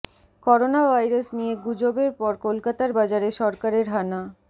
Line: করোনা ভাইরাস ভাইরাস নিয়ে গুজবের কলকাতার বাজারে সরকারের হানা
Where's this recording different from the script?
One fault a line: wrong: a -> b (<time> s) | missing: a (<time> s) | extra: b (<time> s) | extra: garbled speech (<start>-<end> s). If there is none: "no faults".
missing: ভাইরাস (1.3 s)
extra: পর (2.2 s)